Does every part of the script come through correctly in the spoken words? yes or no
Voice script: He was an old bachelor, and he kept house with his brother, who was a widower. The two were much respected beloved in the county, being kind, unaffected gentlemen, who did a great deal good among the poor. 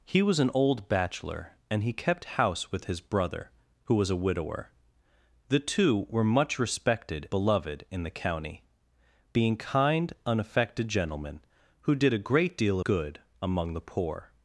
yes